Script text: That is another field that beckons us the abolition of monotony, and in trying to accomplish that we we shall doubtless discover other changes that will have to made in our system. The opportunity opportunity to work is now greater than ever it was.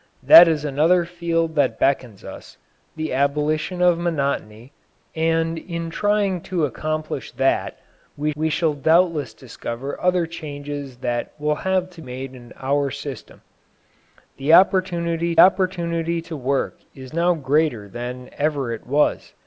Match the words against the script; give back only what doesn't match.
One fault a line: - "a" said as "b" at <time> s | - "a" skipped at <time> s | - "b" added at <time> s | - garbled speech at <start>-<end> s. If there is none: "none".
none